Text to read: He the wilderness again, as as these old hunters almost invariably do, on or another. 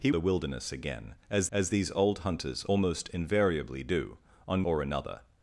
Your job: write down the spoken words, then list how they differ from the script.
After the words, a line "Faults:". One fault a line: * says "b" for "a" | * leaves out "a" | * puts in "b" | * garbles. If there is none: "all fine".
He the wilderness again, as as these old hunters almost invariably do, on or another.
Faults:
all fine